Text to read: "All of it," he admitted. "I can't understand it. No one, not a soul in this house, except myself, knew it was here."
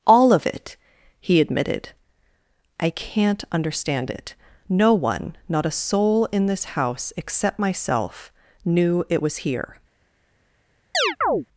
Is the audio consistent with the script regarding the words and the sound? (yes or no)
no